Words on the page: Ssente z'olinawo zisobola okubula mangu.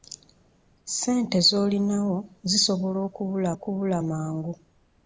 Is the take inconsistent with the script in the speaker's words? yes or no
yes